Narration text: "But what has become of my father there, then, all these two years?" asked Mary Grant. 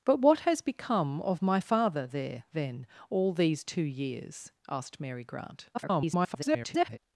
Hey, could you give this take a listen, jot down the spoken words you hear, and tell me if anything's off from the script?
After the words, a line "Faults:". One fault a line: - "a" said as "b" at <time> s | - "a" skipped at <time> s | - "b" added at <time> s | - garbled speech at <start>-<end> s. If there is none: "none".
"But what has become of my father there, then, all these two years?" asked Mary Grant. [garbled]
Faults:
- garbled speech at 5.7-7.0 s